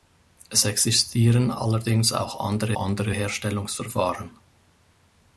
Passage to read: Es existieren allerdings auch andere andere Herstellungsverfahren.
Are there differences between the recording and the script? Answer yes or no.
no